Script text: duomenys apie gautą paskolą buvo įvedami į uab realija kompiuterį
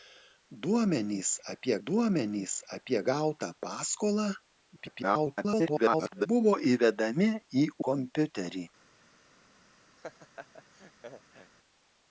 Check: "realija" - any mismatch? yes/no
yes